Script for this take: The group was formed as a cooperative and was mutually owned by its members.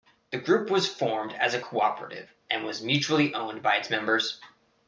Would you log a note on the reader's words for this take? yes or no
no